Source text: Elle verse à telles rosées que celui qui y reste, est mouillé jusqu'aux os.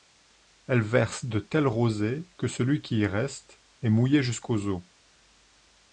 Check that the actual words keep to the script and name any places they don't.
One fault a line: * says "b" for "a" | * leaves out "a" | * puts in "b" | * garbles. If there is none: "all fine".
* says "de" for "à"